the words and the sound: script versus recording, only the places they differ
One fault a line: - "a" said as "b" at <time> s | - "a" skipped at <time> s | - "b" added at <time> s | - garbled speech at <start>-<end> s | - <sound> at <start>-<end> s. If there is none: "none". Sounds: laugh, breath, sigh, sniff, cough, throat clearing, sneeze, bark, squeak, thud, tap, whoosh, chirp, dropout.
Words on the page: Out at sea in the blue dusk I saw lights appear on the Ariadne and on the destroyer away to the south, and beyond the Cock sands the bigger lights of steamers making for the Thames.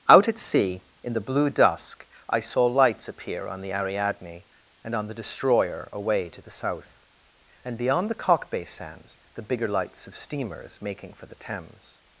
- "bay" added at 8.5 s